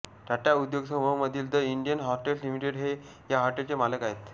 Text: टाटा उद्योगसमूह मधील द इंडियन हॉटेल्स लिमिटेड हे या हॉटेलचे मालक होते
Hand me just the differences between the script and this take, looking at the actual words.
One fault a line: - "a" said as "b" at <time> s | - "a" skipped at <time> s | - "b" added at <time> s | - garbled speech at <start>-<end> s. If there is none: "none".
- "होते" said as "आहेत" at 4.0 s